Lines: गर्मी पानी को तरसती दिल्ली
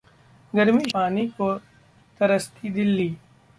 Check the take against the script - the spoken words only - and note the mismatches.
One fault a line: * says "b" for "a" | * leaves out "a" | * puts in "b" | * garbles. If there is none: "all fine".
all fine